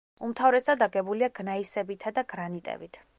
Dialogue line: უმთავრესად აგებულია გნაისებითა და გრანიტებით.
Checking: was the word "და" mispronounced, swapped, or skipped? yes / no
no